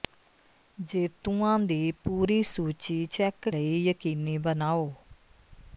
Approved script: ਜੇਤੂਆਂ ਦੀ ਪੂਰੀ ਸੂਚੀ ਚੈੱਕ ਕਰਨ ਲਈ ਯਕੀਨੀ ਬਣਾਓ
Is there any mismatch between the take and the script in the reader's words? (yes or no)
yes